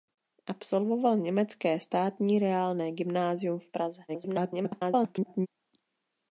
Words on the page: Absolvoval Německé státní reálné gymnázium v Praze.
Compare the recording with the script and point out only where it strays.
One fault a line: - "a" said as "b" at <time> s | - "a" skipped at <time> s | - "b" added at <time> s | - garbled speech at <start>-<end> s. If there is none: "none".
- garbled speech at 4.1-5.5 s